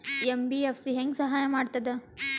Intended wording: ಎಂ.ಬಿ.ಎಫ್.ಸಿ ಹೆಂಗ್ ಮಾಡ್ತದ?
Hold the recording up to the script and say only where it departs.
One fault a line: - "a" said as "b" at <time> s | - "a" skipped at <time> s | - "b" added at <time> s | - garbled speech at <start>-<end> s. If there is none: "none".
- "ಸಹಾಯ" added at 1.2 s